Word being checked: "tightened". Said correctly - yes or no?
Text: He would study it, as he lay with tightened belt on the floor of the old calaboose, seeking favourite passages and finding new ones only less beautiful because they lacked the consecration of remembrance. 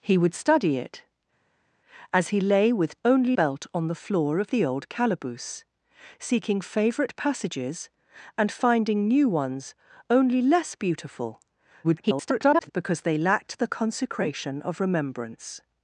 no